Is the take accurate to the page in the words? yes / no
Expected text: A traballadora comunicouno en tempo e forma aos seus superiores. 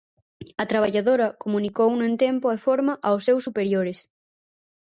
yes